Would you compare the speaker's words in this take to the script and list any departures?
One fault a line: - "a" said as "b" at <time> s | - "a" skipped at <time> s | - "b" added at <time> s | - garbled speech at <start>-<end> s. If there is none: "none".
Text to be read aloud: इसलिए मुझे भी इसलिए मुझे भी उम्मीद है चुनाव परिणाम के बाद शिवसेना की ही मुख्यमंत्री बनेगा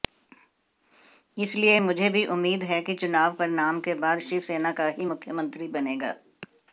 - "इसलिए मुझे भी" skipped at 2.2 s
- "कि" added at 2.8 s
- "की" said as "का" at 4.7 s